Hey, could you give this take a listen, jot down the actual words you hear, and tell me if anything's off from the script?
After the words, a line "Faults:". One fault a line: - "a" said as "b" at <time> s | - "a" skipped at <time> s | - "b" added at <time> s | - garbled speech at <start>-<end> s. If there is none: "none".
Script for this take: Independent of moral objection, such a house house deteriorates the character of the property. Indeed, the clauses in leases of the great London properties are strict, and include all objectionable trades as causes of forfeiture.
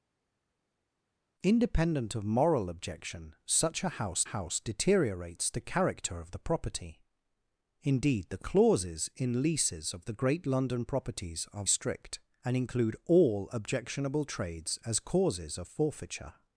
Independent of moral objection, such a house house deteriorates the character of the property. Indeed, the clauses in leases of the great London properties are strict, and include all objectionable trades as causes of forfeiture.
Faults:
none